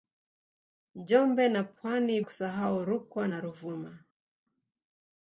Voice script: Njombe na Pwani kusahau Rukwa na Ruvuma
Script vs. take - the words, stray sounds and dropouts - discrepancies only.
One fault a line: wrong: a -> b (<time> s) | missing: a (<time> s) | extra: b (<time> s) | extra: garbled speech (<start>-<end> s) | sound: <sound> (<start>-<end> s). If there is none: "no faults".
no faults